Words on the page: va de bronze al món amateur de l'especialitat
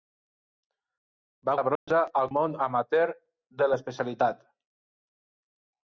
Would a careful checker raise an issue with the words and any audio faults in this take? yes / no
yes